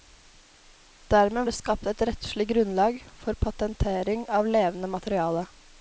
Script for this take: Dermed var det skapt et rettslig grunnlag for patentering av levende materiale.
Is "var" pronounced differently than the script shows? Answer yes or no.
yes